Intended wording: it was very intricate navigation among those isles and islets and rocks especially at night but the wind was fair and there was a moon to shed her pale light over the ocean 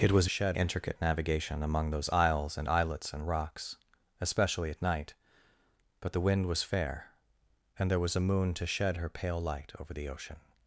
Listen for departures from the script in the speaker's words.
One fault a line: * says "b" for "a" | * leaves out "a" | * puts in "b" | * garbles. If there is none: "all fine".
* says "shed" for "very"